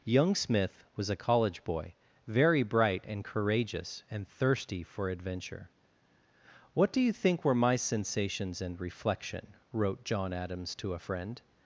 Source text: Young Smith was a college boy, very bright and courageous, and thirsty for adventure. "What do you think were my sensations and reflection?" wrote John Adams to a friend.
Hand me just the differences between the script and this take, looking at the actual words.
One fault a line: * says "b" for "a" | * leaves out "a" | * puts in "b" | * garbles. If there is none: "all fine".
all fine